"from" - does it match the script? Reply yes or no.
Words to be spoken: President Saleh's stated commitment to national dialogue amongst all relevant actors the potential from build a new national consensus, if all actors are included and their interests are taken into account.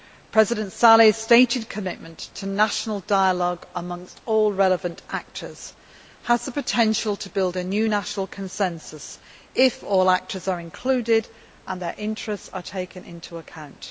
no